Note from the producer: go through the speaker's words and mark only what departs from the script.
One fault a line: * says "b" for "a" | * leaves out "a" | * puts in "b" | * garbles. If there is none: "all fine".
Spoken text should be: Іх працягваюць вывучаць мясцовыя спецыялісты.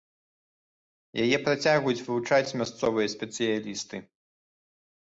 * says "Яе" for "Іх"